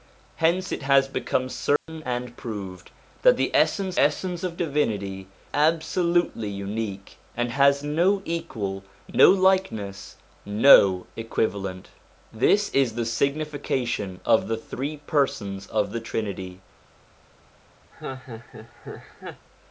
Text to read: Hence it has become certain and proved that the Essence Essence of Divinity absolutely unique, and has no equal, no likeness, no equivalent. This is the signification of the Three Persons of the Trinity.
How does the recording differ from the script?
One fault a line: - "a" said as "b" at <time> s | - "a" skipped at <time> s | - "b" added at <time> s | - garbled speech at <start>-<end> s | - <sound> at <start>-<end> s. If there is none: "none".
- dropout at 1.8-1.9 s
- laugh at 17.9-19.5 s